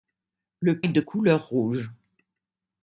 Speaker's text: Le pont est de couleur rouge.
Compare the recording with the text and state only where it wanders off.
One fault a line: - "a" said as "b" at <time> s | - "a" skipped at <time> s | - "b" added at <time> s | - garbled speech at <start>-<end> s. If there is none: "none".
- "pont" skipped at 0.8 s